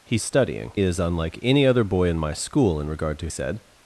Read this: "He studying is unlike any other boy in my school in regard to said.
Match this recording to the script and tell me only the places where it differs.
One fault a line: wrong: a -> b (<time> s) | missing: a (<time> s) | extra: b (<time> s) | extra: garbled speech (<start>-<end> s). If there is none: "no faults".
no faults